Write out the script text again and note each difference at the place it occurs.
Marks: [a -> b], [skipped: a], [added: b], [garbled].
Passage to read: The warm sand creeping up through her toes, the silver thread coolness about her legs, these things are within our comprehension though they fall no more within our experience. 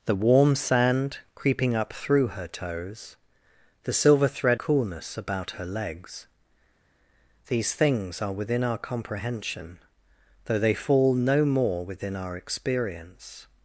The warm sand creeping up through her toes, the silver thread coolness about her legs, these things are within our comprehension though they fall no more within our experience.